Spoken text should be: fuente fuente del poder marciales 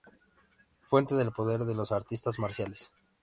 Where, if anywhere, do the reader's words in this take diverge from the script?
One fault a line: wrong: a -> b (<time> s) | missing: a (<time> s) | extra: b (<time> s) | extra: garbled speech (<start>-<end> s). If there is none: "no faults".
missing: fuente (1.1 s)
extra: de los artistas (1.6 s)